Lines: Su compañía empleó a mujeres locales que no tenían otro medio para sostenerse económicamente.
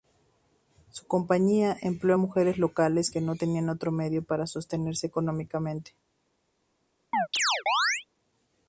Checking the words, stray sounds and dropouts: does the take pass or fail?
fail